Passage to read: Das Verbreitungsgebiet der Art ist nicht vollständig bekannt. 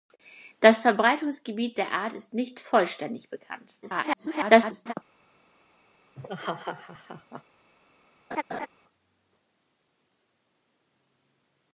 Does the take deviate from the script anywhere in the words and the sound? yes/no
yes